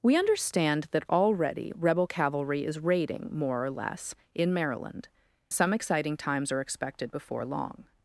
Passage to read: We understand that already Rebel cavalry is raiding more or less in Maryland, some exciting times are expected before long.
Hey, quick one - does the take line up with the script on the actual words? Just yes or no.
yes